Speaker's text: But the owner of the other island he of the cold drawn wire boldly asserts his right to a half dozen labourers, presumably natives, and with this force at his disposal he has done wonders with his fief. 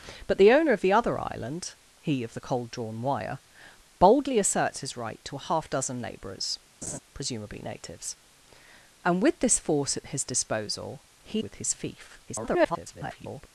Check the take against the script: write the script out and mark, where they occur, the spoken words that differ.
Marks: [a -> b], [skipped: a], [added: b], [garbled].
But the owner of the other island he of the cold drawn wire boldly asserts his right to a half dozen labourers, presumably natives, and with this force at his disposal he [skipped: has done wonders] with his fief. [garbled]